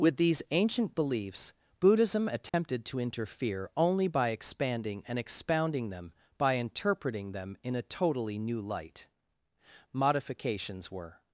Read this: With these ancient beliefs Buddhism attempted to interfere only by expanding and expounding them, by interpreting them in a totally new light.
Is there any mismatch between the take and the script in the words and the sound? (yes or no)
yes